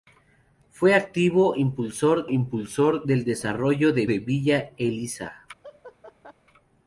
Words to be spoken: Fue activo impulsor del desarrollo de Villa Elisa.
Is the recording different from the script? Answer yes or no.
yes